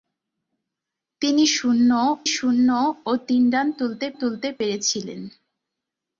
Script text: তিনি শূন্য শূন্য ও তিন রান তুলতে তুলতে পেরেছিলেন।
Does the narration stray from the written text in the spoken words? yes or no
no